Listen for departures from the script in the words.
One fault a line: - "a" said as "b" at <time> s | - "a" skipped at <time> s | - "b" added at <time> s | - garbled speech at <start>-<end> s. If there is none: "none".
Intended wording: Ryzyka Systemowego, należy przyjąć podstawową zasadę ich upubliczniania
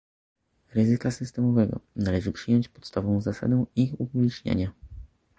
none